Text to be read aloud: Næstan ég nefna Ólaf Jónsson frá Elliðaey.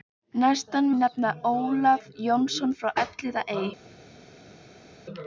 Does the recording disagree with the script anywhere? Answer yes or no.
no